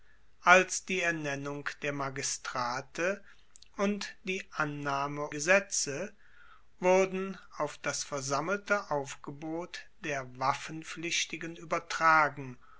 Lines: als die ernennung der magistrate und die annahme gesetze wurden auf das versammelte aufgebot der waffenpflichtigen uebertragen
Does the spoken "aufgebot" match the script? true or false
true